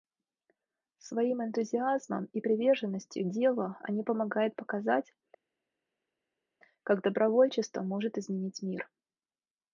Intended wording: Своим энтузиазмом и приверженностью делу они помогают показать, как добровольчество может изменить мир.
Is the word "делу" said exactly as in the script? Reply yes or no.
yes